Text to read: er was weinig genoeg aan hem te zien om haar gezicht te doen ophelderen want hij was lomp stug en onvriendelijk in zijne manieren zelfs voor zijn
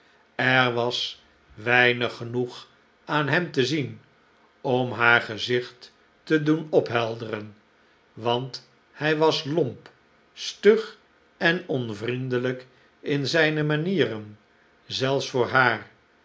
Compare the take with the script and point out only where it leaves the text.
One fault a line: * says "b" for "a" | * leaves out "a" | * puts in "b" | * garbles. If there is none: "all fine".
* says "haar" for "zijn"